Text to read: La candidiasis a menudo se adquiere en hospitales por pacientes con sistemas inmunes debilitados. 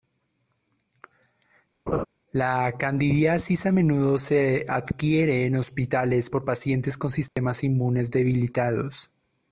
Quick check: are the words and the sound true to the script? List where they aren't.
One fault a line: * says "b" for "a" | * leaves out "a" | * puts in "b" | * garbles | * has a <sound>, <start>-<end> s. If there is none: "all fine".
* has a laugh, 1.9-2.0 s
* has a dropout, 7.3-7.4 s